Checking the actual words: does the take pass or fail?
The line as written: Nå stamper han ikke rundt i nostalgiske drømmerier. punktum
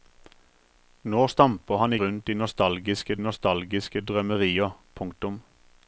fail